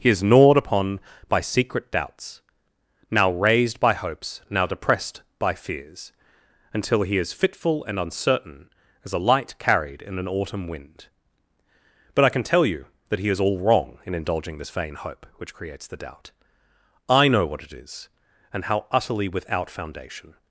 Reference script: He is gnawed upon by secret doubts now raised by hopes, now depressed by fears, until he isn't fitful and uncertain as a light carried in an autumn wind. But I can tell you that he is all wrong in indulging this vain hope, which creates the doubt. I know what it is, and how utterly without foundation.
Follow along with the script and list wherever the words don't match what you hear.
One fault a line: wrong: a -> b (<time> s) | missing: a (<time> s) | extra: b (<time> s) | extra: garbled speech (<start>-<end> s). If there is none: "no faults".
wrong: isn't -> is (7.2 s)